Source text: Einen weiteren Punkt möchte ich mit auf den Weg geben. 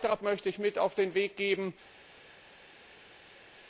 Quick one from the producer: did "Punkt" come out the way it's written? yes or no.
no